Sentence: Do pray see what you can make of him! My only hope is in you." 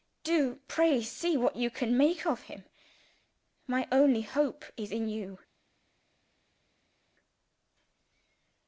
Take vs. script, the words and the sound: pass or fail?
pass